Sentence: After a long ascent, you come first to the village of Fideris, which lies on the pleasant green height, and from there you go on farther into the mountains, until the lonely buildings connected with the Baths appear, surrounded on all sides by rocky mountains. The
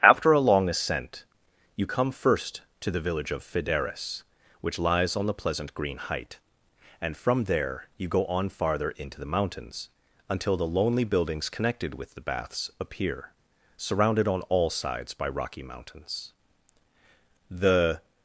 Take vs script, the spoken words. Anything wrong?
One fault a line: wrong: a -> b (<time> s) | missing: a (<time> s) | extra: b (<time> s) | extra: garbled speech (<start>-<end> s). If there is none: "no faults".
no faults